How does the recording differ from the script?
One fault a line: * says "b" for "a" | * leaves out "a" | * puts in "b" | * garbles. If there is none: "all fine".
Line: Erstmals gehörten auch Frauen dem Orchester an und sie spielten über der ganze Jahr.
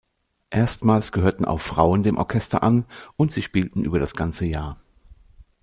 * says "das" for "der"